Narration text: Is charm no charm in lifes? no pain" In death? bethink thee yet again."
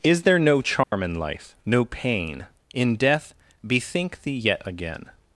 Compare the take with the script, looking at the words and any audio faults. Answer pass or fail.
fail